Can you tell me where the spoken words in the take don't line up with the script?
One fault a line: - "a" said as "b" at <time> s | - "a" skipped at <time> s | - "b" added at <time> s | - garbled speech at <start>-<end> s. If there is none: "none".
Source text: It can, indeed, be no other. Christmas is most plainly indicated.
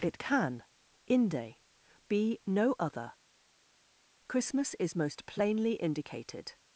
- "indeed" said as "inde" at 1.1 s